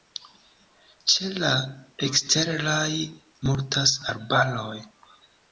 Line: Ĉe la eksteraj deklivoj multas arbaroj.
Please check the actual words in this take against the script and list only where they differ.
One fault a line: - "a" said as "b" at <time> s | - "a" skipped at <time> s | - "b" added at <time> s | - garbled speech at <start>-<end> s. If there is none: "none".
- "deklivoj" skipped at 2.9 s